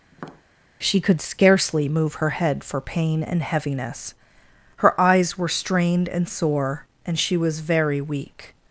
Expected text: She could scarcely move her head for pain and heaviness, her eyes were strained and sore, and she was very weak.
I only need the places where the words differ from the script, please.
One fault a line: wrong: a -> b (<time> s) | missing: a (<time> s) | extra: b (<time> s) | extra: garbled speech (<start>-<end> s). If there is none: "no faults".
no faults